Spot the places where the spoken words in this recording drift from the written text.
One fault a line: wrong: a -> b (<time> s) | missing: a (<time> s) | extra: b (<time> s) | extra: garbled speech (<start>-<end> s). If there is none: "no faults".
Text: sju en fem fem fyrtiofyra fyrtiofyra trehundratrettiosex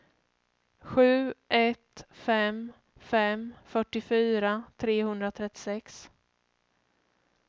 wrong: en -> ett (1.5 s)
missing: fyrtiofyra (4.6 s)